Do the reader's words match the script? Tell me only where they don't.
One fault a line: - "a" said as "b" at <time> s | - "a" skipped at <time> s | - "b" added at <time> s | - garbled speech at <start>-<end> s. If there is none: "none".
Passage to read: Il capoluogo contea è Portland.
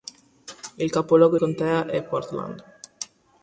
none